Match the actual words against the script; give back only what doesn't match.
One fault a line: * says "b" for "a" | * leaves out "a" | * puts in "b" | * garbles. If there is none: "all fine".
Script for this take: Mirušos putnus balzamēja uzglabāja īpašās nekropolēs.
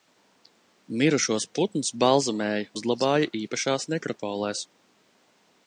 all fine